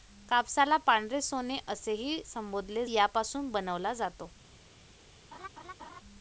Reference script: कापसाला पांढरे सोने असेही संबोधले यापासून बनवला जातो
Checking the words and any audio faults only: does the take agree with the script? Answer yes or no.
no